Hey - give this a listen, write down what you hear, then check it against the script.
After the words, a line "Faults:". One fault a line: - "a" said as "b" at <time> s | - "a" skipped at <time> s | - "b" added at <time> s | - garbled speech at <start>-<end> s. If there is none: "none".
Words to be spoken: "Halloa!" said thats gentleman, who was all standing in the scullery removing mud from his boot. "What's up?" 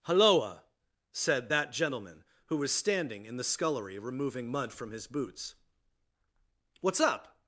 "Halloa!" said that gentleman, who was standing in the scullery removing mud from his boots. "What's up?"
Faults:
- "thats" said as "that" at 1.5 s
- "all" skipped at 2.7 s
- "boot" said as "boots" at 5.1 s